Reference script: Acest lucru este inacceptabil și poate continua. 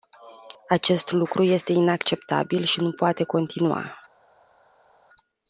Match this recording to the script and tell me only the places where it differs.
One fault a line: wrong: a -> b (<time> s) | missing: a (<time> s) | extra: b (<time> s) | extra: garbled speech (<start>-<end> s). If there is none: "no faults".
extra: nu (2.8 s)